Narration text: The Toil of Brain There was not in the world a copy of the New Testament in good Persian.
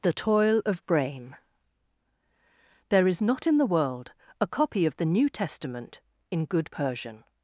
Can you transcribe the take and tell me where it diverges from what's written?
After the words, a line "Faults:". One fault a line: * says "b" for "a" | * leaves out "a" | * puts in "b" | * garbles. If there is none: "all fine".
The Toil of Brain There is not in the world a copy of the New Testament in good Persian.
Faults:
* says "is" for "was"